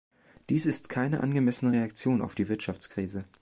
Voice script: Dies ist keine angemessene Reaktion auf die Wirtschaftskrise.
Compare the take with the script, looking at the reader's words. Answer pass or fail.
pass